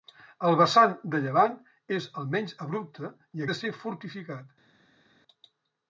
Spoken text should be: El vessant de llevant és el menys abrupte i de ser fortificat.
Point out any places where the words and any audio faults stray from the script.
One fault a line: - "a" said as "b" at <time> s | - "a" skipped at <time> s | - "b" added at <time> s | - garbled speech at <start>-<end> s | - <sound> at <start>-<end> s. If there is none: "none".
none